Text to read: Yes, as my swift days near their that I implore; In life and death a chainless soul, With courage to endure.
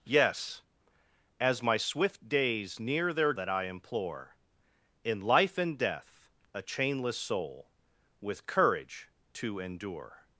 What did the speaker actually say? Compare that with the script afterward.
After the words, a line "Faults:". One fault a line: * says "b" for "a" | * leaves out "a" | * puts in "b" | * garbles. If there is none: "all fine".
Yes, as my swift days near their that I implore; In life and death a chainless soul, With courage to endure.
Faults:
all fine